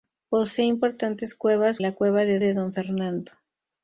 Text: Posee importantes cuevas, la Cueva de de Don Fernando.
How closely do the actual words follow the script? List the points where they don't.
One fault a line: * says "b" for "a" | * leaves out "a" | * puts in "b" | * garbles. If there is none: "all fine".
all fine